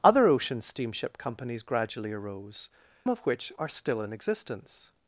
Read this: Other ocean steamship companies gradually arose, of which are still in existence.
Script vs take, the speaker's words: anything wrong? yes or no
no